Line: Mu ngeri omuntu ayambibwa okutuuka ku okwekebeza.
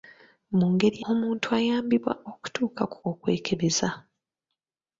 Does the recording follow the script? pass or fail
pass